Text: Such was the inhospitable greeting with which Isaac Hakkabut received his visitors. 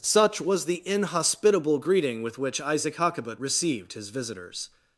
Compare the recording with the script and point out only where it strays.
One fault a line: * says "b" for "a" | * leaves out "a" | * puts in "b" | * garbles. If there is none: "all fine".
all fine